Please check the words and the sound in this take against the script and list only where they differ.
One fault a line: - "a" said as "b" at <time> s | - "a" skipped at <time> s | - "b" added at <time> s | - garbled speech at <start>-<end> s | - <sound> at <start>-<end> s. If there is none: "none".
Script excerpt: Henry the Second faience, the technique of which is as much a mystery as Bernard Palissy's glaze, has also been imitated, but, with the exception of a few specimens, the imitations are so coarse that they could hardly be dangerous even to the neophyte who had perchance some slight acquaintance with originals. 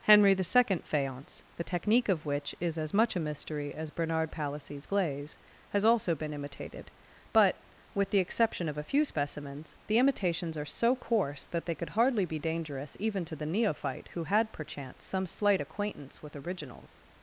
none